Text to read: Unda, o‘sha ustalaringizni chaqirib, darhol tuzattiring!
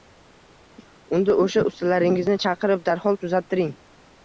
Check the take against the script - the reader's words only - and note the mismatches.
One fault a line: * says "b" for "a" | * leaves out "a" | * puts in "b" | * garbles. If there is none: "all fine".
all fine